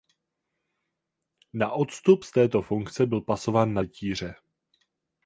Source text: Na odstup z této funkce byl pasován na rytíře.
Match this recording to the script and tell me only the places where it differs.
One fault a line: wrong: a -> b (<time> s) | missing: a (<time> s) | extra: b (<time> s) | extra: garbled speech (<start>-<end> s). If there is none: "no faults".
no faults